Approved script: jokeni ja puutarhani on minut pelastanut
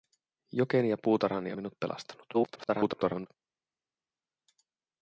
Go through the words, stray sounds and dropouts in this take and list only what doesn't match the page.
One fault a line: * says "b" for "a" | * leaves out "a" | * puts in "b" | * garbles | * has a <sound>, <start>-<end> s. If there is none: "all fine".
* leaves out "on"
* garbles